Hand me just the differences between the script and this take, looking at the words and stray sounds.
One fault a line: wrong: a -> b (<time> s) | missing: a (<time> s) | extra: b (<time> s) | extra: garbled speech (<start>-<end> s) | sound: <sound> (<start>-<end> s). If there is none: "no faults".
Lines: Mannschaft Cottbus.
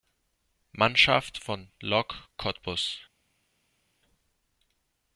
extra: von Lok (1.4 s)